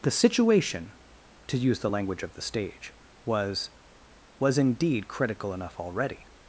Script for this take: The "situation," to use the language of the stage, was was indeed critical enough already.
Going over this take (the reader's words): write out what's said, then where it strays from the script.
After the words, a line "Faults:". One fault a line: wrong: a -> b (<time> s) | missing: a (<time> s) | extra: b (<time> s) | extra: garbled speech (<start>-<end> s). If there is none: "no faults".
The "situation," to use the language of the stage, was was indeed critical enough already.
Faults:
no faults